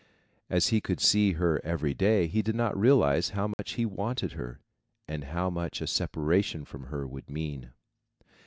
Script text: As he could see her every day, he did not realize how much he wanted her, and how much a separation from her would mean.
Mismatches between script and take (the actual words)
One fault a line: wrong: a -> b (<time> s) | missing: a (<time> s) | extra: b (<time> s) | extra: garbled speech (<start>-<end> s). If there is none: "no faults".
no faults